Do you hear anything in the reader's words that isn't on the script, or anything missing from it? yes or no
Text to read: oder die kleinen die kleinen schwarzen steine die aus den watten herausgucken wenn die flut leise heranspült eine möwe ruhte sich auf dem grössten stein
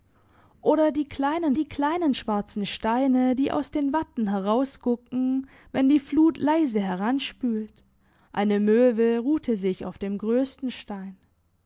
no